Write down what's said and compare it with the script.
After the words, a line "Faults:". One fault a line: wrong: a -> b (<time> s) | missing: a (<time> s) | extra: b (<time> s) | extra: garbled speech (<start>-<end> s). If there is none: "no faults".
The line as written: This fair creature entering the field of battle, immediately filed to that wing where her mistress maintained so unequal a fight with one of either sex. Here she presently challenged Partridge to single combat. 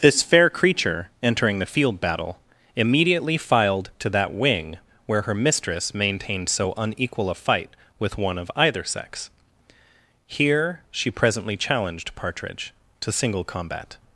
This fair creature entering the field battle, immediately filed to that wing where her mistress maintained so unequal a fight with one of either sex. Here she presently challenged Partridge to single combat.
Faults:
missing: of (2.0 s)